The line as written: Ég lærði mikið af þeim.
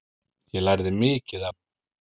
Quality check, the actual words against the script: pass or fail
fail